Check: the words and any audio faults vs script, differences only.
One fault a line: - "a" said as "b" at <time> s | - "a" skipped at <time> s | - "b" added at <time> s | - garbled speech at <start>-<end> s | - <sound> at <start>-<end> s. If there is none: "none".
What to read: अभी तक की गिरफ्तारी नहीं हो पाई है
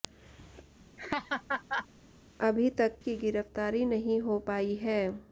- laugh at 1.0-1.9 s